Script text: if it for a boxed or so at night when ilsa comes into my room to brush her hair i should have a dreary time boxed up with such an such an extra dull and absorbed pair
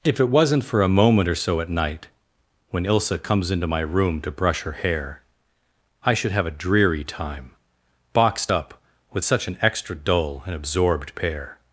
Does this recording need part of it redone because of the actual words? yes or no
yes